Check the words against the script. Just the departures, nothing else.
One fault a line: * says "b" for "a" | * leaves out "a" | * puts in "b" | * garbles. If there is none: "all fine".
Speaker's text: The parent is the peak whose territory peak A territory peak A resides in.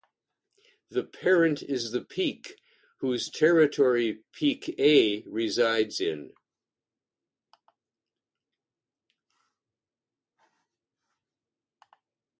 * leaves out "territory peak A"